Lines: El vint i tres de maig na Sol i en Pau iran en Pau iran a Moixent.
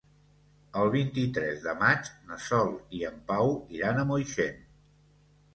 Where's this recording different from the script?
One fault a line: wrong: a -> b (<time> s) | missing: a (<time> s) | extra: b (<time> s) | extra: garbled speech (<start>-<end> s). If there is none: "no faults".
missing: en Pau iran (4.0 s)